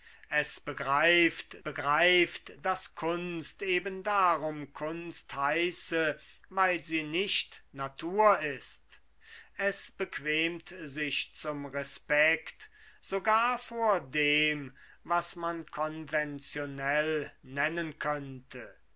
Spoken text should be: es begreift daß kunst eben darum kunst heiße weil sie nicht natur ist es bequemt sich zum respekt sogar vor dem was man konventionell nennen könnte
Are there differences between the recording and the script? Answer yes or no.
yes